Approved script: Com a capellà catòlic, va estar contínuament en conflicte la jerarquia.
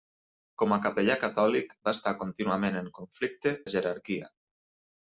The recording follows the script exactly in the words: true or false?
true